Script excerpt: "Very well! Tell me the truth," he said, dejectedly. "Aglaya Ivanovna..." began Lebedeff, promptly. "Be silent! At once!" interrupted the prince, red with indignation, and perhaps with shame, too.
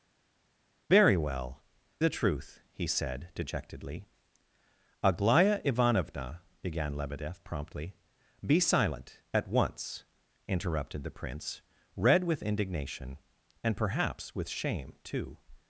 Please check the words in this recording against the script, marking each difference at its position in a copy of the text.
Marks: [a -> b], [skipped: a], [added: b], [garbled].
"Very well! [skipped: Tell me] the truth," he said, dejectedly. "Aglaya Ivanovna..." began Lebedeff, promptly. "Be silent! At once!" interrupted the prince, red with indignation, and perhaps with shame, too.